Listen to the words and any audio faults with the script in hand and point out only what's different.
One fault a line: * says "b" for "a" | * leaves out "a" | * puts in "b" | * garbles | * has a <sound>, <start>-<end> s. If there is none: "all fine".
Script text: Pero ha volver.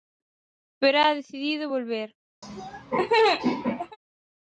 * puts in "decidido"
* has a laugh, 2.4-4.0 s